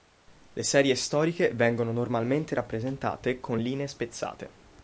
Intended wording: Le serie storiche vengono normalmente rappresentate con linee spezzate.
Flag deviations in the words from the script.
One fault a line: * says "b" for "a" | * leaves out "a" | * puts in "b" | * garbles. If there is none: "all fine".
all fine